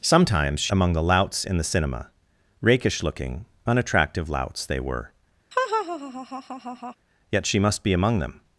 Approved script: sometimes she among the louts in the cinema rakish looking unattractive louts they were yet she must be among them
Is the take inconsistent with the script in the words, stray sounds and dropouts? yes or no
yes